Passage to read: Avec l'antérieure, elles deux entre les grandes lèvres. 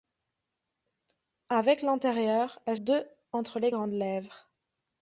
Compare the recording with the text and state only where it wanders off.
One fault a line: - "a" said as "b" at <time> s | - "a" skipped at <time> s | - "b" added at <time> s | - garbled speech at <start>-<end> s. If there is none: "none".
none